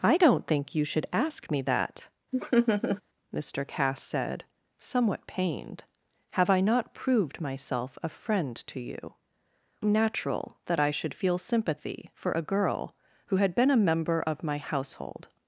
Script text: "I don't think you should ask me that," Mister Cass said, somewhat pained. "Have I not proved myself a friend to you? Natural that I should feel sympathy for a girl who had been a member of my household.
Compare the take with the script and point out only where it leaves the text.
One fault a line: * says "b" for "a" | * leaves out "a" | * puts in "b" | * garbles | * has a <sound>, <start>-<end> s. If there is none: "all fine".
* has a laugh, 2.3-3.0 s